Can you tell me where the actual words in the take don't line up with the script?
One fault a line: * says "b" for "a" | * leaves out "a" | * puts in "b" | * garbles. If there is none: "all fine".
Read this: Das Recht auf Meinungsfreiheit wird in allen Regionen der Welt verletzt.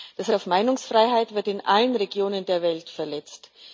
* leaves out "Recht"